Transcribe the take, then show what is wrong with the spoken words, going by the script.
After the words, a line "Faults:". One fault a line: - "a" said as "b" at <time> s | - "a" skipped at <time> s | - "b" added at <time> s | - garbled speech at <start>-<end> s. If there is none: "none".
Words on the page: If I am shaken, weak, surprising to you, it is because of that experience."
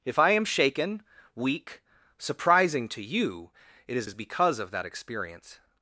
If I am shaken, weak, surprising to you, it is is because of that experience."
Faults:
- "is" added at 4.0 s